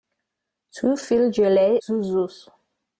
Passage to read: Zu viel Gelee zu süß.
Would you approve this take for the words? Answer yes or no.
yes